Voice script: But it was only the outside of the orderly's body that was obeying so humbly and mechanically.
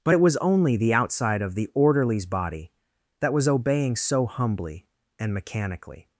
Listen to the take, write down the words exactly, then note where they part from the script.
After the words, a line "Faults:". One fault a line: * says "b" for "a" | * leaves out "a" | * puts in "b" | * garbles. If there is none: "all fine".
But it was only the outside of the orderly's body that was obeying so humbly and mechanically.
Faults:
all fine